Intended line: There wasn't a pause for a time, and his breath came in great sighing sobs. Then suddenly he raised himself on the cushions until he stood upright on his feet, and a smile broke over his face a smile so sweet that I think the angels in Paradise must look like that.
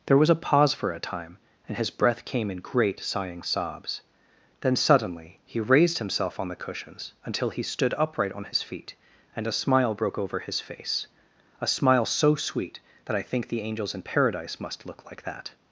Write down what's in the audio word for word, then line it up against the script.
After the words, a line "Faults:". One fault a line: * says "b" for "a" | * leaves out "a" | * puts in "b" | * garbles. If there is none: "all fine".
There was a pause for a time, and his breath came in great sighing sobs. Then suddenly he raised himself on the cushions until he stood upright on his feet, and a smile broke over his face a smile so sweet that I think the angels in Paradise must look like that.
Faults:
* says "was" for "wasn't"